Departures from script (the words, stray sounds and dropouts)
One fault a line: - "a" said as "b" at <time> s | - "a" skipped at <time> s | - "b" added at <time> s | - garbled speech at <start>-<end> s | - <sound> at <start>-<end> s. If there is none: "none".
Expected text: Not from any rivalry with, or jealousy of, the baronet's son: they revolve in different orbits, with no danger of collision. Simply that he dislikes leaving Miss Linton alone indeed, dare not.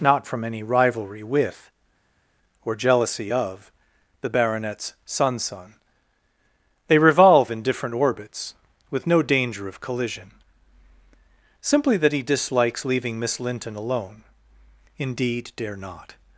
- "son" added at 5.4 s